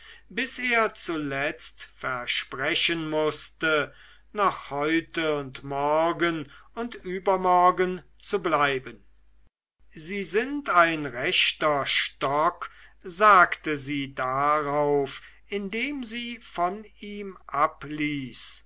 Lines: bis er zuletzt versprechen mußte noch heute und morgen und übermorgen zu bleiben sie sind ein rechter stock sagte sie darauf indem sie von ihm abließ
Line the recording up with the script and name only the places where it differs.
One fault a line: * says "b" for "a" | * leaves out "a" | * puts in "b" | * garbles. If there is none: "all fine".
all fine